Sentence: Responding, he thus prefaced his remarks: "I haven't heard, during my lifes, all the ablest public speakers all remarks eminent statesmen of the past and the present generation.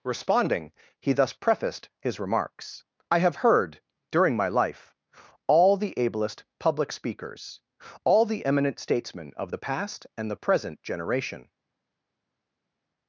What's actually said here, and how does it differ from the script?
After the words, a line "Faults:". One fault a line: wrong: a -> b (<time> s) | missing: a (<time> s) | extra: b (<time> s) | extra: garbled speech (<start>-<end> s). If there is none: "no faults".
Responding, he thus prefaced his remarks: "I have heard, during my life, all the ablest public speakers all the eminent statesmen of the past and the present generation.
Faults:
wrong: haven't -> have (3.2 s)
wrong: lifes -> life (4.5 s)
wrong: remarks -> the (8.2 s)